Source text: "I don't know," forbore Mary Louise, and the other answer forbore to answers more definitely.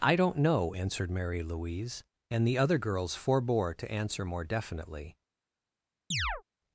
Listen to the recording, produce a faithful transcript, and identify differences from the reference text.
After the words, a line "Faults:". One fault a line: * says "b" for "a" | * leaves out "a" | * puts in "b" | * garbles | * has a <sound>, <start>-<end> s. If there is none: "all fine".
"I don't know," answered Mary Louise, and the other girls forbore to answer more definitely.
Faults:
* says "answered" for "forbore"
* says "girls" for "answer"
* says "answer" for "answers"
* has a chirp, 6.1-6.4 s